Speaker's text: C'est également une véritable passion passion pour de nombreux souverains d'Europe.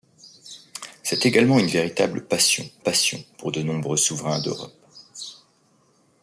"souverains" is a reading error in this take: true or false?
false